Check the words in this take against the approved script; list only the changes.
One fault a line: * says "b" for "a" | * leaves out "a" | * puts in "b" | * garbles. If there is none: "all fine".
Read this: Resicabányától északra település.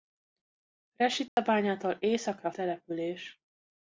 all fine